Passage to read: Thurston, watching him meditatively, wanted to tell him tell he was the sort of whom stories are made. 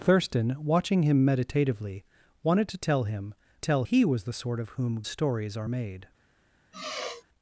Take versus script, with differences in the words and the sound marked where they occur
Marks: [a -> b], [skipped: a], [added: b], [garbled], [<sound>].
Thurston, watching him meditatively, wanted to tell him tell he was the sort of whom stories are made. [sigh]